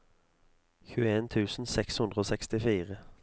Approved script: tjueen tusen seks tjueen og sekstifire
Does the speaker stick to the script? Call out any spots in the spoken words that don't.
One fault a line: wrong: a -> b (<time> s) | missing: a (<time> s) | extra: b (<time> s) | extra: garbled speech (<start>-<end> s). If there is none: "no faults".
wrong: tjueen -> hundre (2.0 s)